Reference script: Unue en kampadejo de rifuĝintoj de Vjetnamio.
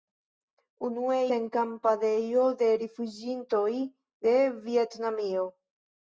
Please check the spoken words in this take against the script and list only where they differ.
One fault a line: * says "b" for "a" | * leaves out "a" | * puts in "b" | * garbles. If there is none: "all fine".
all fine